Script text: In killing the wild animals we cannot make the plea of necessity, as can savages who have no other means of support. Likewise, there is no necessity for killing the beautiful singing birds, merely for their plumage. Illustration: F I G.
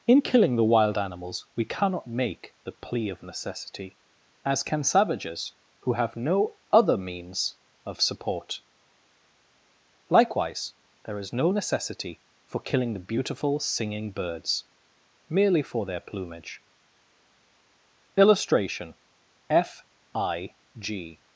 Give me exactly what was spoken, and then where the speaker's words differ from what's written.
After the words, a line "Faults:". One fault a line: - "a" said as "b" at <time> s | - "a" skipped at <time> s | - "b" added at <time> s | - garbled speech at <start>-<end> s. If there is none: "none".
In killing the wild animals we cannot make the plea of necessity, as can savages who have no other means of support. Likewise, there is no necessity for killing the beautiful singing birds, merely for their plumage. Illustration: F I G.
Faults:
none